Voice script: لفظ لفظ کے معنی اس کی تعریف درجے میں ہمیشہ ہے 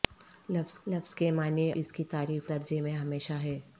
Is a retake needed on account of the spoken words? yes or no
no